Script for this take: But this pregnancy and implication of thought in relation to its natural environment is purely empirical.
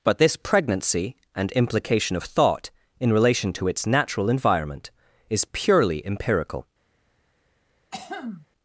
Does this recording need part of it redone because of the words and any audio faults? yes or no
yes